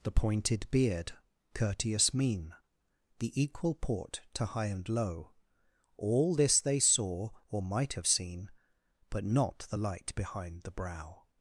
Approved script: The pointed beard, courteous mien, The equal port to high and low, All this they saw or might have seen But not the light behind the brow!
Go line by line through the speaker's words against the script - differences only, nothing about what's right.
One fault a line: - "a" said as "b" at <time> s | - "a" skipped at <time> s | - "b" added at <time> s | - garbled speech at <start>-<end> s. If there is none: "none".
none